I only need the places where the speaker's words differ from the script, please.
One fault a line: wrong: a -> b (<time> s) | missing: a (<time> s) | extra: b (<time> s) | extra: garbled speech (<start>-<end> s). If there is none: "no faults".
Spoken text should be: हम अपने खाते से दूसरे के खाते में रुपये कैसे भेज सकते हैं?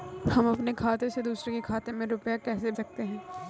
missing: भेज (2.7 s)